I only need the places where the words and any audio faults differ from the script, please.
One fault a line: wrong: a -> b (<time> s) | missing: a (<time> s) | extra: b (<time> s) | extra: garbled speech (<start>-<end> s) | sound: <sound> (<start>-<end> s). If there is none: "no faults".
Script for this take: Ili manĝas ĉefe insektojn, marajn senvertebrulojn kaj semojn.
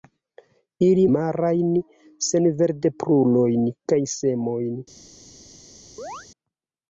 missing: manĝas ĉefe insektojn (1.0 s)
sound: chirp (6.0-6.3 s)